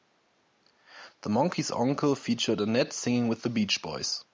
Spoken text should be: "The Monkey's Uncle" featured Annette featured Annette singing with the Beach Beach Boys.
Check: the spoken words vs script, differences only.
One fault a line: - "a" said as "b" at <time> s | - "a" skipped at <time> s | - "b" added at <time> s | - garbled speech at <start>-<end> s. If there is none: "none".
- "featured Annette" skipped at 2.9 s
- "Beach" skipped at 3.8 s